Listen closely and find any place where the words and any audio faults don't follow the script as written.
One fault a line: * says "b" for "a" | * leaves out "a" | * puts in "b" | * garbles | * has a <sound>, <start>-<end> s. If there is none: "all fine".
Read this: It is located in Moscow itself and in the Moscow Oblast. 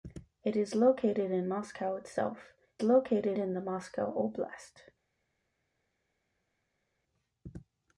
* says "located" for "and"